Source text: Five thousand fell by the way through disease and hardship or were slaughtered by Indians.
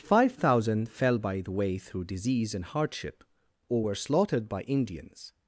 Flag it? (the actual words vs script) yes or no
no